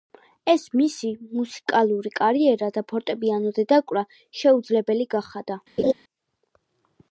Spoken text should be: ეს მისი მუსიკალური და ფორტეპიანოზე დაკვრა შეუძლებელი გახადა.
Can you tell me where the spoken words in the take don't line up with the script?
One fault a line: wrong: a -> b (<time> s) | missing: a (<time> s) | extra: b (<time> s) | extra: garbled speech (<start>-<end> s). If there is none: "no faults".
extra: კარიერა (2.2 s)